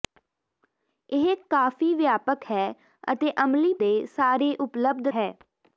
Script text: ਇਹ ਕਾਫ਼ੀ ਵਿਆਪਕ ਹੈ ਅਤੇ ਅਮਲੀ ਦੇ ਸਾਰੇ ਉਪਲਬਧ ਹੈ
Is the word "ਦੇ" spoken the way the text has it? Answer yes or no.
yes